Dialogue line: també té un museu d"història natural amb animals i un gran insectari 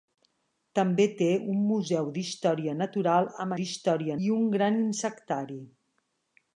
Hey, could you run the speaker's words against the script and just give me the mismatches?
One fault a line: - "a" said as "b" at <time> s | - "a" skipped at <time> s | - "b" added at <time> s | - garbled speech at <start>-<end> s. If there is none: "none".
- "animals" said as "d"història" at 3.6 s